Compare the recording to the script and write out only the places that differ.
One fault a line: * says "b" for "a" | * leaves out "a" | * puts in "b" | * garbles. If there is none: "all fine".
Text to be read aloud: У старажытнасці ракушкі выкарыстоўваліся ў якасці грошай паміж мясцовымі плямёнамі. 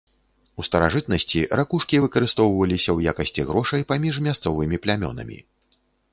all fine